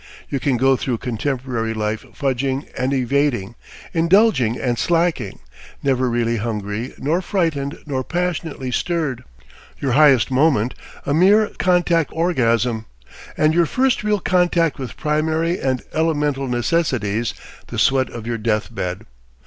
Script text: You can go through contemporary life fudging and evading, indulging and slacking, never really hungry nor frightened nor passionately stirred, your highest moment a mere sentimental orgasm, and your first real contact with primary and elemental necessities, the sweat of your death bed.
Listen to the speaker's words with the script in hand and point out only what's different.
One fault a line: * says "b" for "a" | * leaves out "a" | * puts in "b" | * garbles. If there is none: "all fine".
* says "contact" for "sentimental"